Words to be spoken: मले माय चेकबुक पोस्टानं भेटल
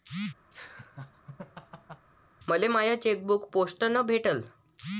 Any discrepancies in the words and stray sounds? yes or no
yes